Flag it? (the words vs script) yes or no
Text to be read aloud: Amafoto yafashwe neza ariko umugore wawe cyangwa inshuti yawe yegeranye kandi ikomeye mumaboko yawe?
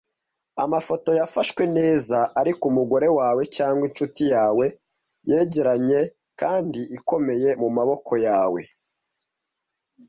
no